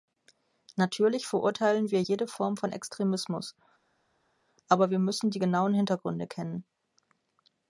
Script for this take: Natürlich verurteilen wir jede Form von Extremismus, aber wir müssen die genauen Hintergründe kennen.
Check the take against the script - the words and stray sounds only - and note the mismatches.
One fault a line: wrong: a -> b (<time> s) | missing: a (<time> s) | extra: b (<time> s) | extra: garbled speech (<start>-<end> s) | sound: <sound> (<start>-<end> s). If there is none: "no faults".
no faults